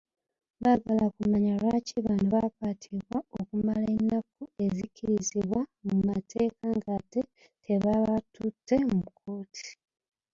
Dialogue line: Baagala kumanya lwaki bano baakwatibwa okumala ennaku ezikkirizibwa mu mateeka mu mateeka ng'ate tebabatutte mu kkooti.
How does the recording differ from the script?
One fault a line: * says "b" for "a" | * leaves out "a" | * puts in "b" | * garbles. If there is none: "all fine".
* leaves out "mu mateeka"